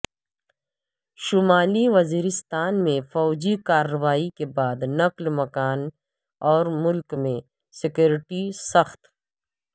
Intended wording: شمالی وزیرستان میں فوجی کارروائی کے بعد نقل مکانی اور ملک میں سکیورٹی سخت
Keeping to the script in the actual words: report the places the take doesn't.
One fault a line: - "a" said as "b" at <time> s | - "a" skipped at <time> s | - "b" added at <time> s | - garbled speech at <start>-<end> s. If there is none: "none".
none